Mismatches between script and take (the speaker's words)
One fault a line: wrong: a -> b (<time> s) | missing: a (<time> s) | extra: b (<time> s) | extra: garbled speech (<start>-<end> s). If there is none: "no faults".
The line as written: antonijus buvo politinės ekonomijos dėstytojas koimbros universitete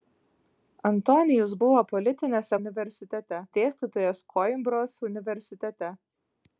wrong: ekonomijos -> universitete (2.6 s)